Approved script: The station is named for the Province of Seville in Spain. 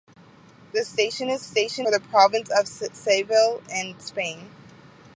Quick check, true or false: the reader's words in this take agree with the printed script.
false